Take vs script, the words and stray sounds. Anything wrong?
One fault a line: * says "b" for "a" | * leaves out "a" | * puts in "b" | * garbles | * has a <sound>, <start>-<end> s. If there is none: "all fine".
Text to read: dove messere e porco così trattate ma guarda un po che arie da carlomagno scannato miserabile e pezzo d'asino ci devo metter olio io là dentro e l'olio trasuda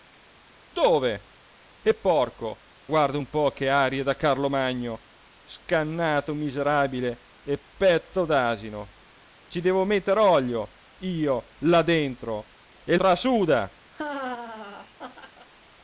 * leaves out "messere"
* leaves out "così trattate ma"
* leaves out "l'olio"
* has a laugh, 13.9-15.5 s